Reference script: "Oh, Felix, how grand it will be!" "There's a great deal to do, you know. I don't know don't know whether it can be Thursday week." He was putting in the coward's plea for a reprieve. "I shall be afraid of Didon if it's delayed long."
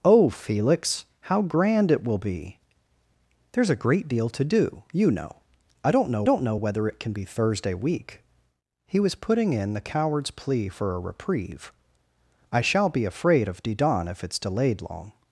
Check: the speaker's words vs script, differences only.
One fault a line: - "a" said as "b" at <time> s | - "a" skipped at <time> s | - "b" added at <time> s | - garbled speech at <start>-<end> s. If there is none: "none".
none